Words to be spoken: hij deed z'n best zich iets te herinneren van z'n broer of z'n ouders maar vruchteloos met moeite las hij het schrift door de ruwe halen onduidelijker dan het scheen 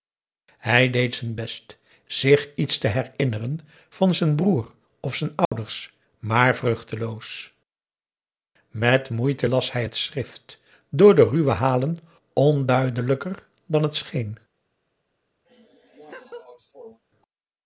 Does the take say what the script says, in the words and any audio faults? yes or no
no